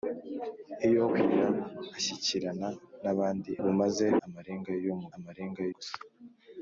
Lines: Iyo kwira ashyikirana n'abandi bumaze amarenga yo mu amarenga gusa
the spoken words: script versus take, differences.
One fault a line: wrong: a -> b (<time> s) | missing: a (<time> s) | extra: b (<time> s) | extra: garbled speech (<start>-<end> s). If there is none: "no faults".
no faults